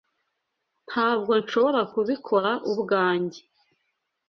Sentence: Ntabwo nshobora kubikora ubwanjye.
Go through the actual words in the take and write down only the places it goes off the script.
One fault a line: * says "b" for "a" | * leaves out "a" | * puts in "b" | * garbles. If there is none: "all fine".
all fine